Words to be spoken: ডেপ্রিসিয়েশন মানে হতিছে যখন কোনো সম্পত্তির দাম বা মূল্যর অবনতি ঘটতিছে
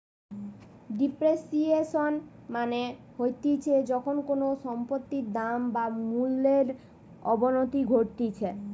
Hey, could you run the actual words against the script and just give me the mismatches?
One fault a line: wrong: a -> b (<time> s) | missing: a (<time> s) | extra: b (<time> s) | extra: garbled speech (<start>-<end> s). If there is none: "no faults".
no faults